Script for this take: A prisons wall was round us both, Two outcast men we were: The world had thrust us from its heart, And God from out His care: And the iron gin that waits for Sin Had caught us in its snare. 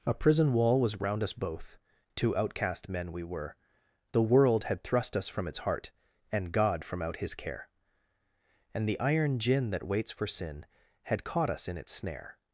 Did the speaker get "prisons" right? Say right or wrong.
wrong